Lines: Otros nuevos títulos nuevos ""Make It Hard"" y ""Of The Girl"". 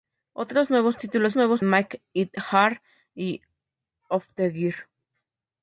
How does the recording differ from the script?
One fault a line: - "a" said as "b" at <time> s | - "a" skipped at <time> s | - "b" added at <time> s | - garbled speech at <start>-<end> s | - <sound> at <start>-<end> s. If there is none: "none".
none